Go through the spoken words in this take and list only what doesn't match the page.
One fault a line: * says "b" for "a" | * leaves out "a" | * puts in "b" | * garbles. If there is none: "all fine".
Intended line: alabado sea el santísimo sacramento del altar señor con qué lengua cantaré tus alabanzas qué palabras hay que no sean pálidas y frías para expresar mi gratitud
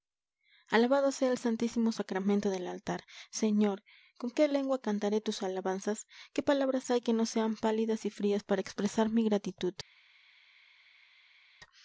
all fine